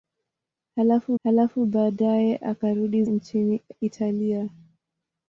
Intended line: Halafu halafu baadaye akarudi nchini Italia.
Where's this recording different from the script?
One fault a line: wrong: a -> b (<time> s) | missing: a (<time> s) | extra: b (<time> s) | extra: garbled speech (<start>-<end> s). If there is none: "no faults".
no faults